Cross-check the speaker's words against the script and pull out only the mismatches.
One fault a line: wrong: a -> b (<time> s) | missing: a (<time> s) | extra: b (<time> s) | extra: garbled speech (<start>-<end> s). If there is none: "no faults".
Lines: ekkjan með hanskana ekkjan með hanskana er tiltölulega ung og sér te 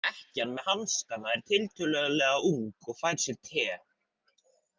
missing: ekkjan með hanskana (1.3 s)
extra: fær (3.0 s)